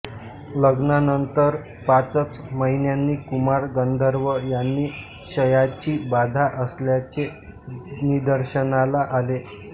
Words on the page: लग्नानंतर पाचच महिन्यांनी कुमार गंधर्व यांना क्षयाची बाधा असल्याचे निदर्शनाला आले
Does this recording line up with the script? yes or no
yes